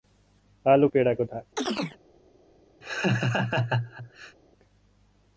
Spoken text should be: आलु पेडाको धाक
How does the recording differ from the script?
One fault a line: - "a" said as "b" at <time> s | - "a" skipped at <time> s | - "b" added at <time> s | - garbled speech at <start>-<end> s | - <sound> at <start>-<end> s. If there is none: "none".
- chirp at 1.6-2.0 s
- laugh at 2.8-4.4 s